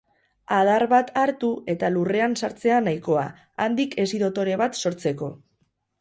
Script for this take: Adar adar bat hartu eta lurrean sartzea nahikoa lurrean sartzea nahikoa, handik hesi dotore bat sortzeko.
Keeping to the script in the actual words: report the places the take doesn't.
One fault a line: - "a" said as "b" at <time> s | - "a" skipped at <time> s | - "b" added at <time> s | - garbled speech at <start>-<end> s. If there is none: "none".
- "adar" skipped at 0.8 s
- "lurrean sartzea nahikoa" skipped at 3.2 s